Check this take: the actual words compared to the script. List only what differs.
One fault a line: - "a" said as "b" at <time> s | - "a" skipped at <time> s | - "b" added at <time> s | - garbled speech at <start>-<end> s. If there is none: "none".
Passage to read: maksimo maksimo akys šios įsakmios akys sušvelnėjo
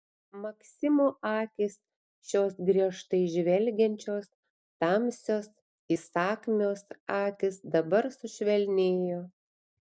- "maksimo" skipped at 1.0 s
- "griežtai žvelgiančios tamsios" added at 2.7 s
- "dabar" added at 7.8 s